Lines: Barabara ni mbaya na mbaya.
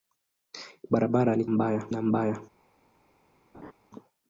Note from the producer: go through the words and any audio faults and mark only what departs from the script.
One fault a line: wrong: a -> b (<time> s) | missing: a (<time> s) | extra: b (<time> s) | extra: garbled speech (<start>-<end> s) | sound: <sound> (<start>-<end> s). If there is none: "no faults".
sound: laugh (3.5-3.7 s)